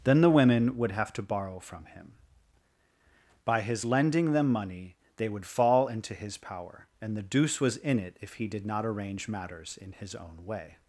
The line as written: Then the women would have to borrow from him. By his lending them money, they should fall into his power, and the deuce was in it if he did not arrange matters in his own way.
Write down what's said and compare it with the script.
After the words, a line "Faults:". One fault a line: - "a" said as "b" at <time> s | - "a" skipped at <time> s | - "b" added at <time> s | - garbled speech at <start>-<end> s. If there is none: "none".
Then the women would have to borrow from him. By his lending them money, they would fall into his power, and the deuce was in it if he did not arrange matters in his own way.
Faults:
- "should" said as "would" at 5.3 s